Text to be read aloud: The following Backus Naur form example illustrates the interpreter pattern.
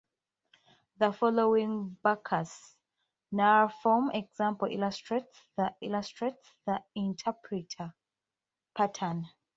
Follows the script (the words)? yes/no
no